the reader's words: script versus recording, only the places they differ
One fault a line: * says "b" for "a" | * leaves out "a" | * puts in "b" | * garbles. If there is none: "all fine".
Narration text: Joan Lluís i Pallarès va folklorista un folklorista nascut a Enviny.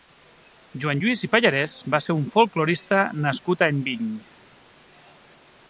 * says "ser" for "folklorista"